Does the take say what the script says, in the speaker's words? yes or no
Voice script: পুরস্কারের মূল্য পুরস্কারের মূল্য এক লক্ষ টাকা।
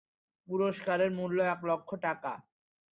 no